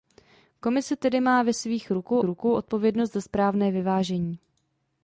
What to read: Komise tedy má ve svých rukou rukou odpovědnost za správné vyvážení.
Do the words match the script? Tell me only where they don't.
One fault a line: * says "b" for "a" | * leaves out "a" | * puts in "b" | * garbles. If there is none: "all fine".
all fine